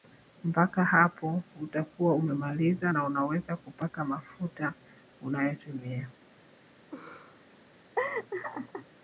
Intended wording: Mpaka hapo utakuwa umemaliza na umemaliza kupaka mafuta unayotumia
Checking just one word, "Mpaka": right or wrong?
right